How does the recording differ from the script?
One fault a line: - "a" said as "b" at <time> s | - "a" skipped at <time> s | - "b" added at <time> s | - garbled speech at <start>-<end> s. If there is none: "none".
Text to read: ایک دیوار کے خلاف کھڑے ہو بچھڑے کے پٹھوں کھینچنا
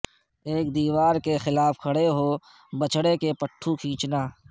none